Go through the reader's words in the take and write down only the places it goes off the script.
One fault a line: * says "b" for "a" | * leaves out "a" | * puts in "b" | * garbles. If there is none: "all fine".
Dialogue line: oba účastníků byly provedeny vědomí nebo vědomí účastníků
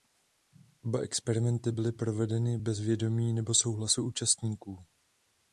* says "experimenty" for "účastníků"
* puts in "bez"
* says "souhlasu" for "vědomí"